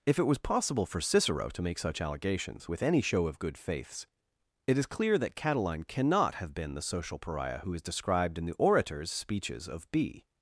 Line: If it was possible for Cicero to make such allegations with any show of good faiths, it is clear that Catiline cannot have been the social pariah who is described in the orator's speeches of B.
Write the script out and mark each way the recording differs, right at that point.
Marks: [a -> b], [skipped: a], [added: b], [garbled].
If it was possible for Cicero to make such allegations with any show of good faiths, it is clear that Catiline cannot have been the social pariah who is described in the orator's speeches of B.